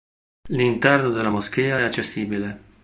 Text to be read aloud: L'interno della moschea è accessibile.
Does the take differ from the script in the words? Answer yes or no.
no